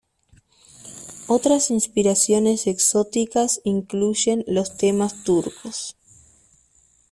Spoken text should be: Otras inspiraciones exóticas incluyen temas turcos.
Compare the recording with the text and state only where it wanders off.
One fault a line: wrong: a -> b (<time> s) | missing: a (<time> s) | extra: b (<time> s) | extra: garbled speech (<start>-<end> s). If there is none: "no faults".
extra: los (4.5 s)